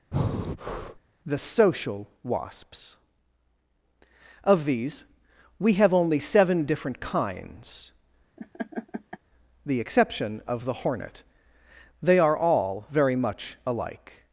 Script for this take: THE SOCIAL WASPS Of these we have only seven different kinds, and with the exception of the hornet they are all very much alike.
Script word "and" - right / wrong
wrong